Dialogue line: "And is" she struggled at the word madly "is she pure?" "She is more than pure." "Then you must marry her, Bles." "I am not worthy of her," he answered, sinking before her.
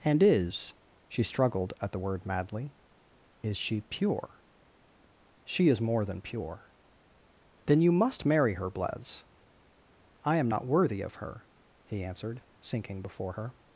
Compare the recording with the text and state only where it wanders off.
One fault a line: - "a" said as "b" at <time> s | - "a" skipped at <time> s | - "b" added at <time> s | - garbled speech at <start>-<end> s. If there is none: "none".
none